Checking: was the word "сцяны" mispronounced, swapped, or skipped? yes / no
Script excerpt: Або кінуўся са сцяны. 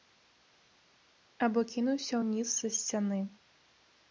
no